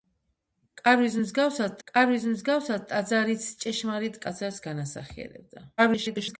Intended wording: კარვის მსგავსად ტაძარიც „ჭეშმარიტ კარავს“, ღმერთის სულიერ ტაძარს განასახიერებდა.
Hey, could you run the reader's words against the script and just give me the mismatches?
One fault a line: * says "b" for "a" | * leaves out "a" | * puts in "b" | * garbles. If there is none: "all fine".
* puts in "კარვის მსგავსად"
* leaves out "კარავს ღმერთის სულიერ"
* garbles